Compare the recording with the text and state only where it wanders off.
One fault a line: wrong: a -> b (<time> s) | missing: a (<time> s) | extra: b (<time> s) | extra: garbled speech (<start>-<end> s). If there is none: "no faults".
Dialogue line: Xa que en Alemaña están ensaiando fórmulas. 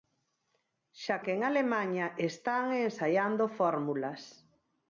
no faults